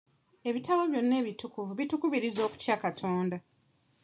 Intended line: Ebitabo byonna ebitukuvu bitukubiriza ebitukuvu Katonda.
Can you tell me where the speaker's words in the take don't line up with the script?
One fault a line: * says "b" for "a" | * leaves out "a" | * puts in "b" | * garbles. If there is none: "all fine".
* says "okutya" for "ebitukuvu"